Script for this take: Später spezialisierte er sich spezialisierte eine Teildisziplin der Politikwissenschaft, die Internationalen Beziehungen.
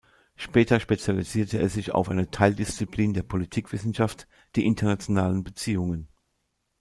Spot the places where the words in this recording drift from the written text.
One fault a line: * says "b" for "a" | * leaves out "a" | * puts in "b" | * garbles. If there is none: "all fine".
* says "auf" for "spezialisierte"